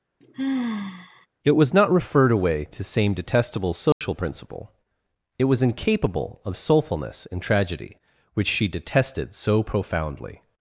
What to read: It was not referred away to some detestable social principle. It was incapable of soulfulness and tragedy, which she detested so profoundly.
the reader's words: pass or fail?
fail